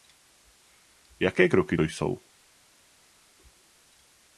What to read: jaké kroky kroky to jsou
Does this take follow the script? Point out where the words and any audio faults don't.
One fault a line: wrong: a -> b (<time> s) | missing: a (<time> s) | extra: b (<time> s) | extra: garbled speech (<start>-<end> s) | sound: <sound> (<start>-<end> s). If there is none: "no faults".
missing: kroky (1.8 s)